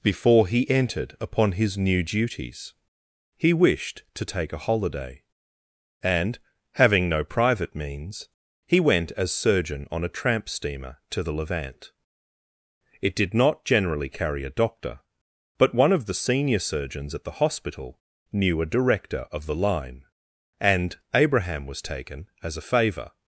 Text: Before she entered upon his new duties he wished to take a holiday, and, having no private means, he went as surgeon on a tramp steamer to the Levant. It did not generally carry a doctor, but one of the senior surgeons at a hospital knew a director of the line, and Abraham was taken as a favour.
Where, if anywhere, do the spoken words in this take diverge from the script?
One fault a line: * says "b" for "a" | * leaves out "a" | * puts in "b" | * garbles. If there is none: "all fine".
* says "he" for "she"
* says "the" for "a"